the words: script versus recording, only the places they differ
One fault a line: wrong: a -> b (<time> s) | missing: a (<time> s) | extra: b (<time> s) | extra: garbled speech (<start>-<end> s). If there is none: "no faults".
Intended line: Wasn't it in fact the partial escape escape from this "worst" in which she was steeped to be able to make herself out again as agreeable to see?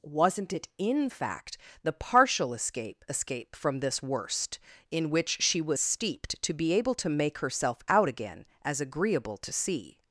no faults